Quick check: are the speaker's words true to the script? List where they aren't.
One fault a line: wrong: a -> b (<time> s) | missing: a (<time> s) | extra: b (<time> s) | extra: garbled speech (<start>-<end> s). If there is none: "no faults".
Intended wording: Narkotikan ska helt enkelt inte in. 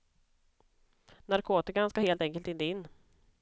no faults